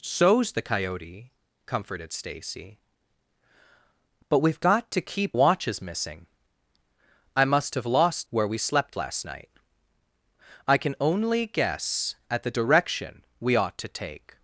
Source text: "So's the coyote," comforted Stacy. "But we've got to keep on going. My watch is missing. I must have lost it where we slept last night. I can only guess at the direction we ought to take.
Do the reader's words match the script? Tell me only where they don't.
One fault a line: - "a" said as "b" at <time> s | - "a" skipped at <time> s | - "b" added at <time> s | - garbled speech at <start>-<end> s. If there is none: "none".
- "on going My" skipped at 5.4 s
- "it" skipped at 8.3 s